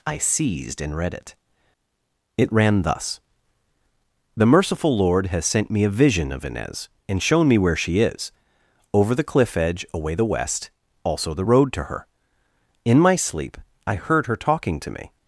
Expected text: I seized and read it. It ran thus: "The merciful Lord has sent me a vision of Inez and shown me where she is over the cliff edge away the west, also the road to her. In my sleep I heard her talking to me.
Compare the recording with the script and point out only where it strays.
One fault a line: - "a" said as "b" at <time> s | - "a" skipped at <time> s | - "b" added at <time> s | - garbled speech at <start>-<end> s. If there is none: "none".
none